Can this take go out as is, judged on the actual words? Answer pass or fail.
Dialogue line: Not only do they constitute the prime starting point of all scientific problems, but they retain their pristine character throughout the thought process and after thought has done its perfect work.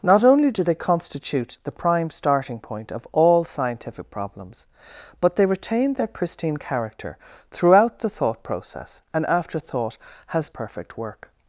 fail